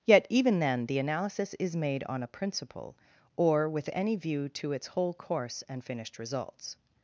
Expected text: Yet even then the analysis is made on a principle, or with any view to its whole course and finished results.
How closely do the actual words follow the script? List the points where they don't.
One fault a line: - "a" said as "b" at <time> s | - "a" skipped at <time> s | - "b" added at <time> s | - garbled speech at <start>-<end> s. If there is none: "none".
none